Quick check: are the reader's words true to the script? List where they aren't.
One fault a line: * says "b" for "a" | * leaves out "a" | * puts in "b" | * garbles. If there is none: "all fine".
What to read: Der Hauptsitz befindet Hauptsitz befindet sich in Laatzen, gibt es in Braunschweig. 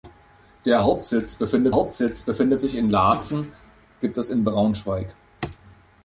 all fine